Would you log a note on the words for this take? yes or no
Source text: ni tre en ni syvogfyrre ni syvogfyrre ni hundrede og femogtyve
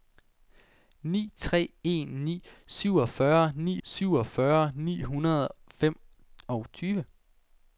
no